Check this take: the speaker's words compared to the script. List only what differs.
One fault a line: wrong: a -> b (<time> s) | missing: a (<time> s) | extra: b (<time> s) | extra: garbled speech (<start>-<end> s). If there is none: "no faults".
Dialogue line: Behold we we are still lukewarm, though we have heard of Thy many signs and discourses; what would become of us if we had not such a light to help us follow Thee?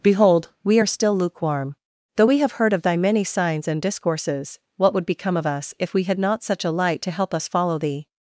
missing: we (0.8 s)